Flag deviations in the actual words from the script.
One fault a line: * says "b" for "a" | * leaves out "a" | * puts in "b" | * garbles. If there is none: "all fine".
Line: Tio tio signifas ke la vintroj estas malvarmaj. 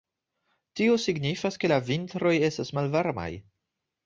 * leaves out "tio"